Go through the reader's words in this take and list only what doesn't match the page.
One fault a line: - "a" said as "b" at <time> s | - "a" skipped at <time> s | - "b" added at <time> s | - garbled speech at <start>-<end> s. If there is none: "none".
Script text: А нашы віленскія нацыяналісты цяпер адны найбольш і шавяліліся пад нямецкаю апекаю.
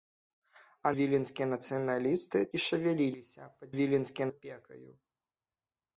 - "нашы" skipped at 0.9 s
- "цяпер адны найбольш" skipped at 2.4 s
- "нямецкаю" said as "віленскія" at 3.7 s